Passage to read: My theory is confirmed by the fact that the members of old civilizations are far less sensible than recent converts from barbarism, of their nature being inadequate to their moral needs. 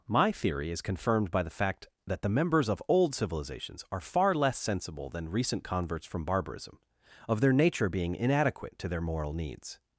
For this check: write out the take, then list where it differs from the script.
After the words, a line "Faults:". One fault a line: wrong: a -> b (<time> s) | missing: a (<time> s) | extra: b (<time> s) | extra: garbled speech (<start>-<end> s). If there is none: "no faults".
My theory is confirmed by the fact that the members of old civilizations are far less sensible than recent converts from barbarism, of their nature being inadequate to their moral needs.
Faults:
no faults